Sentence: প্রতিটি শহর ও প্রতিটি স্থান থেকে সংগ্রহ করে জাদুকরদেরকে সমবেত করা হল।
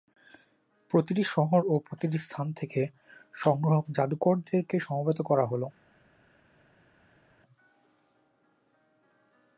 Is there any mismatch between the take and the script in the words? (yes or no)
yes